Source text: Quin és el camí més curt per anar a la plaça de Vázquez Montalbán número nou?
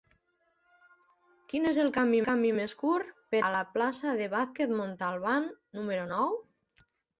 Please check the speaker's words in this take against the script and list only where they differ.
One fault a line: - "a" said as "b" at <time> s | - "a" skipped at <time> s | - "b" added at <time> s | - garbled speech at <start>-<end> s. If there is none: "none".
- "camí" added at 2.3 s
- "anar" skipped at 3.4 s